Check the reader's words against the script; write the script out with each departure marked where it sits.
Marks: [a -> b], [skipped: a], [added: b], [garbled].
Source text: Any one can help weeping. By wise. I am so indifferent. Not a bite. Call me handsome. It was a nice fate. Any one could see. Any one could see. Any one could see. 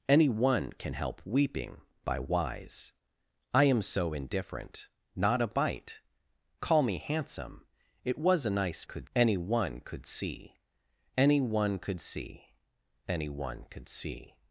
Any one can help weeping. By wise. I am so indifferent. Not a bite. Call me handsome. It was a nice [fate. -> could] Any one could see. Any one could see. Any one could see.